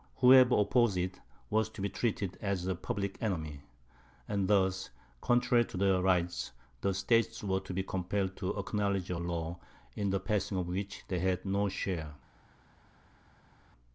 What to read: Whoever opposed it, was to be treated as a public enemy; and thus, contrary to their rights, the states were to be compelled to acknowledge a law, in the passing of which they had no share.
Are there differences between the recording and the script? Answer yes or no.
no